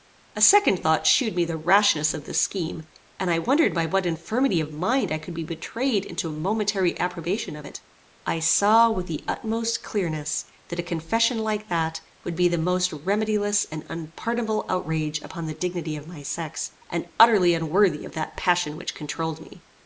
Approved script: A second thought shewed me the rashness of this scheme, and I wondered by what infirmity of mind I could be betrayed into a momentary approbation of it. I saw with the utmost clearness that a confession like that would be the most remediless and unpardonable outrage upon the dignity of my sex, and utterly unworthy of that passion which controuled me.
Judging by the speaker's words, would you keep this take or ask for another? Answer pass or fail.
pass